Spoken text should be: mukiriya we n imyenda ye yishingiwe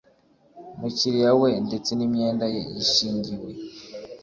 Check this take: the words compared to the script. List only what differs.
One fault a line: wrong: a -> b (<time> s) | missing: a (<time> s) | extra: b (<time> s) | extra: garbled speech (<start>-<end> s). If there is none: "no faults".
extra: ndetse (1.7 s)